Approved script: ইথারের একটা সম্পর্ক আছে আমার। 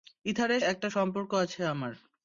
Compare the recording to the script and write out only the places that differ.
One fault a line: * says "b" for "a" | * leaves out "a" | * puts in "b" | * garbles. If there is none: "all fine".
all fine